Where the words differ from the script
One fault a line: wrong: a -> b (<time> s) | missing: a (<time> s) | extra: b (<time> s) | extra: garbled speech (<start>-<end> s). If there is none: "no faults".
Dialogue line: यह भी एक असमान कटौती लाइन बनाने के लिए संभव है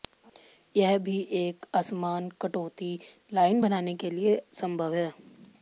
no faults